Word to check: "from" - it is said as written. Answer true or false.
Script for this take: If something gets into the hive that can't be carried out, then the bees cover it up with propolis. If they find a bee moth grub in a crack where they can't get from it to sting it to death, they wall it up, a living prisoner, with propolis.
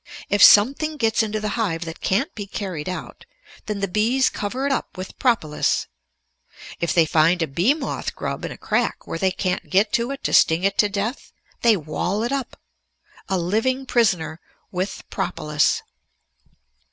false